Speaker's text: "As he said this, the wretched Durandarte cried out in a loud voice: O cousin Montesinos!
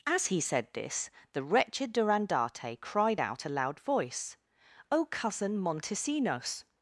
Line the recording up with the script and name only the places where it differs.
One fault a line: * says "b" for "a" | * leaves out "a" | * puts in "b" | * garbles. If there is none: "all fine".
* leaves out "in"